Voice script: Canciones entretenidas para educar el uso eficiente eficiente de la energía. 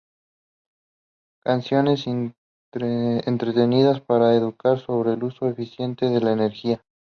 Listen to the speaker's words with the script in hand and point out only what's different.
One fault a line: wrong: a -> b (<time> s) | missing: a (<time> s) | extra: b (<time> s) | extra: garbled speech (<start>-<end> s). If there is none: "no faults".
extra: sobre (4.8 s)
missing: eficiente (6.1 s)